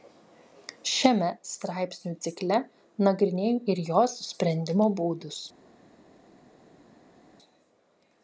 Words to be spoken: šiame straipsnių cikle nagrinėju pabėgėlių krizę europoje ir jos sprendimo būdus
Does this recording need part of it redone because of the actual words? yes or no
yes